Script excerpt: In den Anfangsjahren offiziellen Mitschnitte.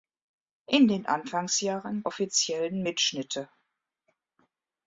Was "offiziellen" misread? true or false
false